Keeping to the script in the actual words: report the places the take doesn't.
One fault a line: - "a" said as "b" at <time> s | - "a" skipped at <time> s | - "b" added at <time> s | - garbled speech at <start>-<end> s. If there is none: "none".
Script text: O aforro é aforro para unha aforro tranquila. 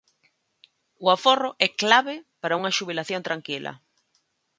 - "aforro" said as "clave" at 1.8 s
- "aforro" said as "xubilación" at 2.8 s